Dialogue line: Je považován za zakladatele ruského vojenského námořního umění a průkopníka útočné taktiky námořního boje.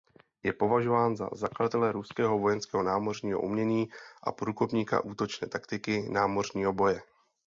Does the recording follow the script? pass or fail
pass